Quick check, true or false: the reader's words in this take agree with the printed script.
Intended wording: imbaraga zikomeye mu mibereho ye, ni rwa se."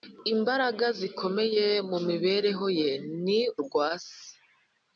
true